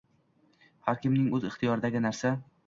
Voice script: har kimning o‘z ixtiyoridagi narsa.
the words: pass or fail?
pass